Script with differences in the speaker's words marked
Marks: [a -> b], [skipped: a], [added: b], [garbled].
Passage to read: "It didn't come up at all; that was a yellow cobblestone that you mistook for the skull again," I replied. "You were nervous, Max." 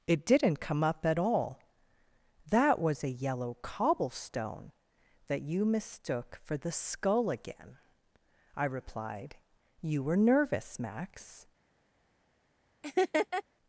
"It didn't come up at all; that was a yellow cobblestone that you mistook for the skull again," I replied. "You were nervous, Max."